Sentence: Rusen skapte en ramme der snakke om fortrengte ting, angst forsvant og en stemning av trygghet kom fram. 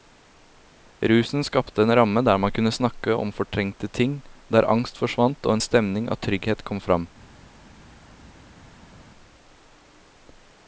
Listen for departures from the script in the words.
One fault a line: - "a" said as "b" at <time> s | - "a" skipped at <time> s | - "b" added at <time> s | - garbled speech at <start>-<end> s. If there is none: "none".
- "man kunne" added at 2.4 s
- "der" added at 4.5 s